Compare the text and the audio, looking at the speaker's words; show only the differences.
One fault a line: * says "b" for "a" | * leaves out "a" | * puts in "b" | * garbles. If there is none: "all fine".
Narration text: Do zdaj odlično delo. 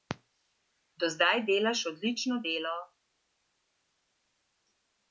* puts in "delaš"